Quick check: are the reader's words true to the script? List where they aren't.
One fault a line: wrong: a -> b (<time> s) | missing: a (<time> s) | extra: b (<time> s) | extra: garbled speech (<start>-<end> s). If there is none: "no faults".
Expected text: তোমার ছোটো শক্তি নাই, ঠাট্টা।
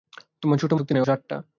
no faults